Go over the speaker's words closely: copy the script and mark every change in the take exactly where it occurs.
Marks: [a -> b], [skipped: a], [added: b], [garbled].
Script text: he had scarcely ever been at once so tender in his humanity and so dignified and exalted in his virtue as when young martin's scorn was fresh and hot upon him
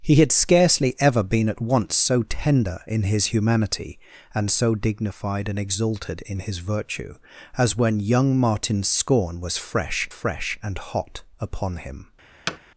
he had scarcely ever been at once so tender in his humanity and so dignified and exalted in his virtue as when young martin's scorn was fresh [added: fresh] and hot upon him